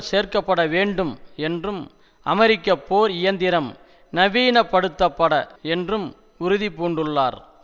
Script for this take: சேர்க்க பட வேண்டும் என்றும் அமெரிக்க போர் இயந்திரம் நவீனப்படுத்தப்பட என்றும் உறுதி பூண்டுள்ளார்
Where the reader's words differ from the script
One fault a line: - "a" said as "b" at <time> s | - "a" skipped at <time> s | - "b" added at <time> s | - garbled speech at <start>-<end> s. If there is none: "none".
none